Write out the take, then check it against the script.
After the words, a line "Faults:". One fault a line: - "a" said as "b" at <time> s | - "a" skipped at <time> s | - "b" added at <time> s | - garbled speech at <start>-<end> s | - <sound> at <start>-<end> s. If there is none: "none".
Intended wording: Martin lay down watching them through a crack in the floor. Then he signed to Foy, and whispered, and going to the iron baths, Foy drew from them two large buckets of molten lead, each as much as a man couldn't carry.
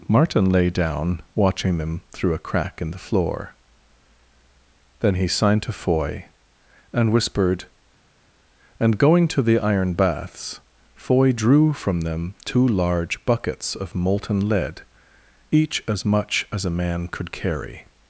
Martin lay down watching them through a crack in the floor. Then he signed to Foy, and whispered, and going to the iron baths, Foy drew from them two large buckets of molten lead, each as much as a man could carry.
Faults:
- "couldn't" said as "could" at 17.1 s